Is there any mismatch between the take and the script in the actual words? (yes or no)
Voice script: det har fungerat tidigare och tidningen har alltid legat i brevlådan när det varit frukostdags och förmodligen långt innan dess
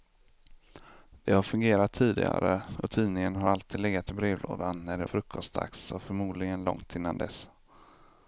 yes